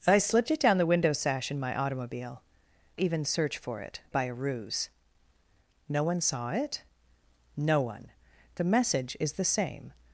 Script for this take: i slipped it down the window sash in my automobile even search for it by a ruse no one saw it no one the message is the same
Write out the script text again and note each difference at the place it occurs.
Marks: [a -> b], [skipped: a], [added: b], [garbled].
i slipped it down the window sash in my automobile even search for it by a ruse no one saw it no one the message is the same